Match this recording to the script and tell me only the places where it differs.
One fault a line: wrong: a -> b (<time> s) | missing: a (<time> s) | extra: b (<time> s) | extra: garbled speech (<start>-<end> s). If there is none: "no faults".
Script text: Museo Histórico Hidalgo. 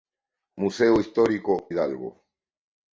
no faults